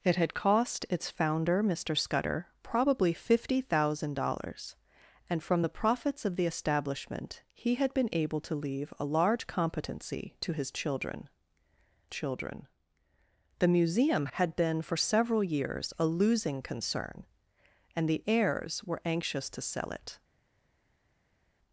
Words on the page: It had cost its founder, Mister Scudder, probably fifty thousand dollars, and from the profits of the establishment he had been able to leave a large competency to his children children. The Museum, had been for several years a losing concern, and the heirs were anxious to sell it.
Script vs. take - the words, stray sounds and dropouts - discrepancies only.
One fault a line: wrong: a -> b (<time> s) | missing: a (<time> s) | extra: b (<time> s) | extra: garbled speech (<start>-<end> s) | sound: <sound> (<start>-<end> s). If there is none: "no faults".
no faults